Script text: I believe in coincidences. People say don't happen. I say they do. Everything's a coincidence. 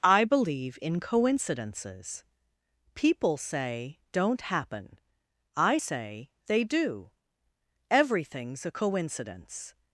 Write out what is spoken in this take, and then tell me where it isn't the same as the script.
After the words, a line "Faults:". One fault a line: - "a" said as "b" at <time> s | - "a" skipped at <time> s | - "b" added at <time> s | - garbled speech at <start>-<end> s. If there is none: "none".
I believe in coincidences. People say don't happen. I say they do. Everything's a coincidence.
Faults:
none